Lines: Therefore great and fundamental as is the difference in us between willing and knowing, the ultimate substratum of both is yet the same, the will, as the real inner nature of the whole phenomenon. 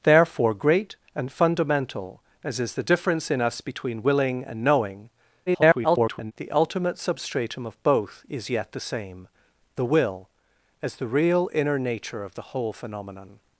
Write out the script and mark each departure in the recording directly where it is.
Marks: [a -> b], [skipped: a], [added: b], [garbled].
Therefore great and fundamental as is the difference in us between willing and knowing, [garbled] the ultimate substratum of both is yet the same, the will, as the real inner nature of the whole phenomenon.